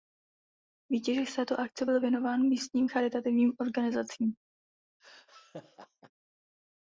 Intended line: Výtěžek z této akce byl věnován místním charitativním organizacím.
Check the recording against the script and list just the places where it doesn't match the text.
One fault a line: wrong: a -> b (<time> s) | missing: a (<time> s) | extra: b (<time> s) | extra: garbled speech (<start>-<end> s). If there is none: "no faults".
no faults